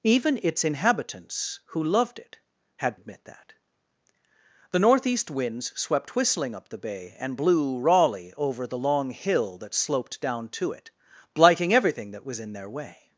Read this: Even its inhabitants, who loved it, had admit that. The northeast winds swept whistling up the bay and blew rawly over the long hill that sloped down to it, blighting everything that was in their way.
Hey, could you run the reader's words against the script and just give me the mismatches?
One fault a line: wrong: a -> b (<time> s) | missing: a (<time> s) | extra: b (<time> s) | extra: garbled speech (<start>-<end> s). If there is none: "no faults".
no faults